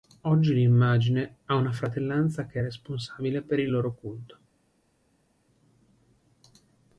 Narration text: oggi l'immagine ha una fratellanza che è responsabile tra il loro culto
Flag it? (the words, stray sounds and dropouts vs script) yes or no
yes